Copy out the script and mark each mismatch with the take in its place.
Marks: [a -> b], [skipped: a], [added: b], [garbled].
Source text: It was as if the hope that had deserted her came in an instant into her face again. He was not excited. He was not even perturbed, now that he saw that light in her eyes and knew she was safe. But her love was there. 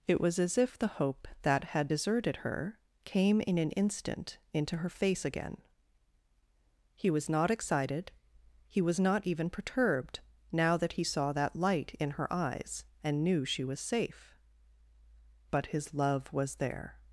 It was as if the hope that had deserted her came in an instant into her face again. He was not excited. He was not even perturbed, now that he saw that light in her eyes and knew she was safe. But [her -> his] love was there.